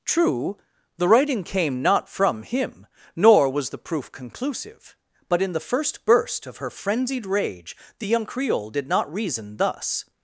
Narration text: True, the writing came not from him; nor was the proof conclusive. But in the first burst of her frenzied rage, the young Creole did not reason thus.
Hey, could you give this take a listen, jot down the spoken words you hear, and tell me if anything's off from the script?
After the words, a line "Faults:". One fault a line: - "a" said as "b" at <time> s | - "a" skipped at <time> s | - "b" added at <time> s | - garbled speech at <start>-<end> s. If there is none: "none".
True, the writing came not from him; nor was the proof conclusive. But in the first burst of her frenzied rage, the young Creole did not reason thus.
Faults:
none